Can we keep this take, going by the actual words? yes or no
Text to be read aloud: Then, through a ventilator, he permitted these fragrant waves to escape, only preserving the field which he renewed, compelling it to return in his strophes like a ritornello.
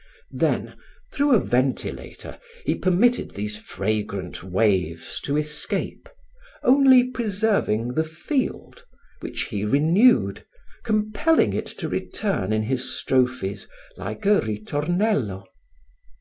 yes